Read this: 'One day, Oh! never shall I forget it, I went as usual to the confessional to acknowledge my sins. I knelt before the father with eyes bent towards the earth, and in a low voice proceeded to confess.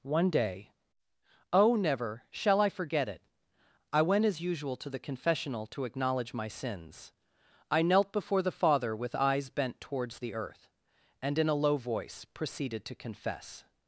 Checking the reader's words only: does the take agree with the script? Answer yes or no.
yes